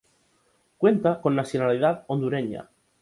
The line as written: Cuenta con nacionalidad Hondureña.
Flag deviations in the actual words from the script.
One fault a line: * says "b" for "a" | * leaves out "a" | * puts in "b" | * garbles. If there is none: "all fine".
all fine